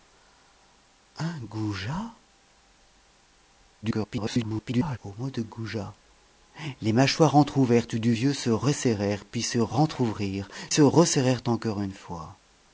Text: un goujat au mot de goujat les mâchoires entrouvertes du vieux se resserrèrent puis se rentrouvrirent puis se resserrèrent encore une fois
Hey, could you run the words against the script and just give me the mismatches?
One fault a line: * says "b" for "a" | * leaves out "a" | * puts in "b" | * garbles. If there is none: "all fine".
* garbles
* leaves out "puis"